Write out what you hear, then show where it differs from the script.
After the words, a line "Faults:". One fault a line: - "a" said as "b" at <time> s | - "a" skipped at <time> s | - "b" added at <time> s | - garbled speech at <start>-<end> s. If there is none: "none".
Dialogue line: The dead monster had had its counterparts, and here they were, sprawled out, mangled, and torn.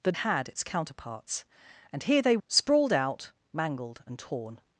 The had its counterparts, and here they sprawled out, mangled, and torn.
Faults:
- "dead monster" skipped at 0.1 s
- "had" skipped at 0.5 s
- "were" skipped at 2.4 s